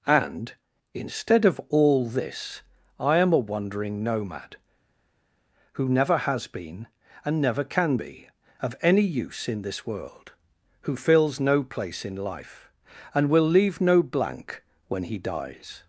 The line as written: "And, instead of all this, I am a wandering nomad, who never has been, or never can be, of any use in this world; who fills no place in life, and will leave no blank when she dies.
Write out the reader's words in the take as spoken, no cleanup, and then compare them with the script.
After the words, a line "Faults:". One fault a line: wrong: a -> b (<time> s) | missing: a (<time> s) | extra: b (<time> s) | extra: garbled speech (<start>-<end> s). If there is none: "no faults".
"And, instead of all this, I am a wandering nomad, who never has been, and never can be, of any use in this world; who fills no place in life, and will leave no blank when he dies.
Faults:
wrong: or -> and (7.2 s)
wrong: she -> he (15.0 s)